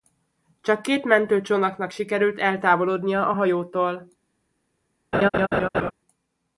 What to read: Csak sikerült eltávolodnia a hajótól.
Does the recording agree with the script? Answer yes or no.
no